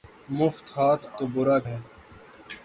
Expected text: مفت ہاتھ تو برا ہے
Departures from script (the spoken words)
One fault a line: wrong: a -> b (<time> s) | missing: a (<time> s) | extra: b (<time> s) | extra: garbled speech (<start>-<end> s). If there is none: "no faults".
no faults